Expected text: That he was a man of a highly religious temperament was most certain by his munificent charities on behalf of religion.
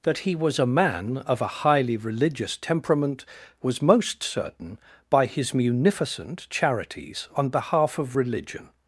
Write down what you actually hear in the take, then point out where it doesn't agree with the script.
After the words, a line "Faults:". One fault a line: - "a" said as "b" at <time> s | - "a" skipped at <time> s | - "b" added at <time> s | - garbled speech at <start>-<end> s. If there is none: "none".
That he was a man of a highly religious temperament was most certain by his munificent charities on behalf of religion.
Faults:
none